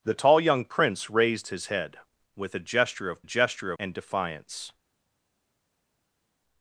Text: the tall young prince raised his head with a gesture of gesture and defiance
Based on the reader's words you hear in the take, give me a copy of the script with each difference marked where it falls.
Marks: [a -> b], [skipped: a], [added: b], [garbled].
the tall young prince raised his head with a gesture of gesture and defiance